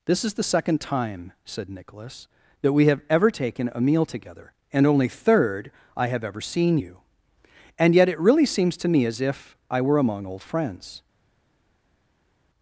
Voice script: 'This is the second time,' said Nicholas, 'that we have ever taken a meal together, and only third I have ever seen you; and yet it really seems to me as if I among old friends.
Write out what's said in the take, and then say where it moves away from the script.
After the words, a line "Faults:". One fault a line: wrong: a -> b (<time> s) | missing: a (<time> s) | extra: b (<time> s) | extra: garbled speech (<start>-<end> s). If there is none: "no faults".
'This is the second time,' said Nicholas, 'that we have ever taken a meal together, and only third I have ever seen you; and yet it really seems to me as if I were among old friends.
Faults:
extra: were (9.8 s)